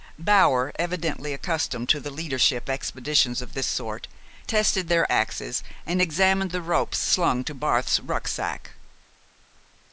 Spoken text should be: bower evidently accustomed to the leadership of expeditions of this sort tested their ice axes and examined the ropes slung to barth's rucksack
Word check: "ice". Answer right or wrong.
wrong